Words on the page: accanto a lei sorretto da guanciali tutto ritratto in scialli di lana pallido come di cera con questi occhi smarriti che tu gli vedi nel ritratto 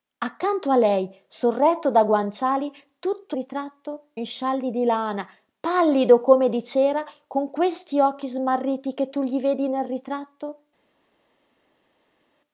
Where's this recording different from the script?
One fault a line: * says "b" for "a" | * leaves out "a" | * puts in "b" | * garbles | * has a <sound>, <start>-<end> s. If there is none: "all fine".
all fine